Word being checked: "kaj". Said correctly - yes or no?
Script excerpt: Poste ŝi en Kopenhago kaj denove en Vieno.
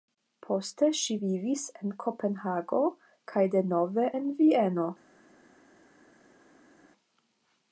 yes